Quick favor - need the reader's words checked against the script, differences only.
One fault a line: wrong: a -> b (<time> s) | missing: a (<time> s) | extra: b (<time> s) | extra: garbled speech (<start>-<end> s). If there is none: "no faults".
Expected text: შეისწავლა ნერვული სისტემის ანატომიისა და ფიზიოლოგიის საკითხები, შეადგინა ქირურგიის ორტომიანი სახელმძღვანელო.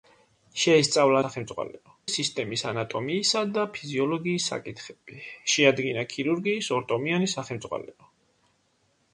wrong: ნერვული -> სახელმძღვანელო (1.2 s)